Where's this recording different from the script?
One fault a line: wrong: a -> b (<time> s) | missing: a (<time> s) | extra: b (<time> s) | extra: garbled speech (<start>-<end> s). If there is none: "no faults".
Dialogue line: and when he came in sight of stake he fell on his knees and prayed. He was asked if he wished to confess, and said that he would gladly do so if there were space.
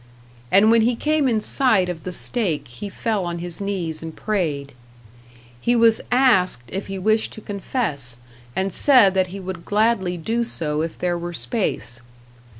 extra: the (2.0 s)